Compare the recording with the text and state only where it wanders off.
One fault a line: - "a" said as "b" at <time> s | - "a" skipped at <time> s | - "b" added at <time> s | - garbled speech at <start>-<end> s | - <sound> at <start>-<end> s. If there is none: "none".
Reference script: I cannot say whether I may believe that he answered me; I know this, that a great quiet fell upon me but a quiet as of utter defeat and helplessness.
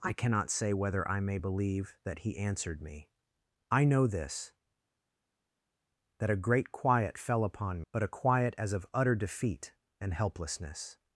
- "me" skipped at 7.8 s